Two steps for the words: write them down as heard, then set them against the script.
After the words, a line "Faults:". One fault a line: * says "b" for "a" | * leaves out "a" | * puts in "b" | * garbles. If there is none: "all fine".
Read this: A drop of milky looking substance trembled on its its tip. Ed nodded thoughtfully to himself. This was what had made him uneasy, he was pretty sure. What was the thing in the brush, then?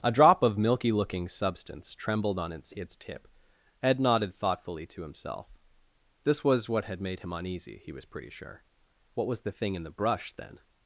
A drop of milky looking substance trembled on its its tip. Ed nodded thoughtfully to himself. This was what had made him uneasy, he was pretty sure. What was the thing in the brush, then?
Faults:
all fine